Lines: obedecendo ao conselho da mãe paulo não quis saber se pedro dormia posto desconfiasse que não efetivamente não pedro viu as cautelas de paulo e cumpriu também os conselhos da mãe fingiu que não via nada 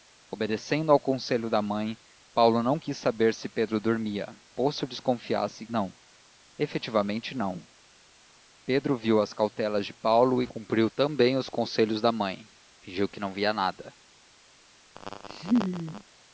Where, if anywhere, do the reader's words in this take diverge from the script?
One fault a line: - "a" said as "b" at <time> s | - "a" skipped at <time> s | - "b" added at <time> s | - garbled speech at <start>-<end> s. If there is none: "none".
- "que" skipped at 5.7 s